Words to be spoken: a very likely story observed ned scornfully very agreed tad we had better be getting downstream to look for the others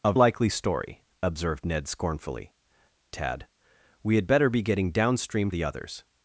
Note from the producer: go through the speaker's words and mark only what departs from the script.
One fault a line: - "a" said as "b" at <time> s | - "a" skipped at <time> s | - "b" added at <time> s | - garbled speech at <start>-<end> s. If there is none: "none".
- "very" skipped at 0.1 s
- "very agreed" skipped at 2.5 s
- "to look for" skipped at 5.5 s